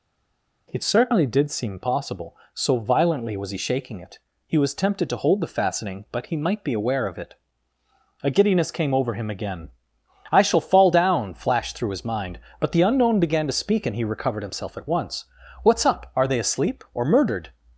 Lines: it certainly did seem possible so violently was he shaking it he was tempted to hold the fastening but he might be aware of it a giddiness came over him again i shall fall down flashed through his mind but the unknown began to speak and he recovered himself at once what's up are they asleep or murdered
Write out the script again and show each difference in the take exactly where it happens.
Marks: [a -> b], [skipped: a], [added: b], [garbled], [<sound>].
it certainly did seem possible so violently was he shaking it he was tempted to hold the fastening but he might be aware of it a giddiness came over him again i shall fall down flashed through his mind but the unknown began to speak and he recovered himself at once what's up are they asleep or murdered